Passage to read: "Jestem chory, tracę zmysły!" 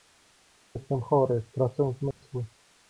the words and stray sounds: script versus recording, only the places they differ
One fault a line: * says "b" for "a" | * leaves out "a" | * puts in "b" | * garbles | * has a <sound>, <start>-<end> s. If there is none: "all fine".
* has a dropout, 2.1-2.2 s